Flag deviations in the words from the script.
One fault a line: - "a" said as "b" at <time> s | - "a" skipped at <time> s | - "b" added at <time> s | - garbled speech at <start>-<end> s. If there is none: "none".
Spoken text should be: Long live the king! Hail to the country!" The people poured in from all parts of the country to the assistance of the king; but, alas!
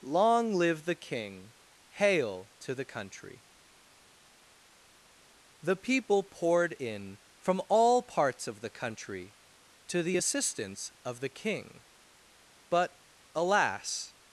none